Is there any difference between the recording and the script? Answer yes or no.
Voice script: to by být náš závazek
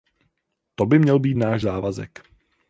yes